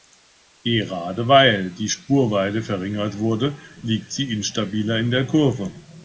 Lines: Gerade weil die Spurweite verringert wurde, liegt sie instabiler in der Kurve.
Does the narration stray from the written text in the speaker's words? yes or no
no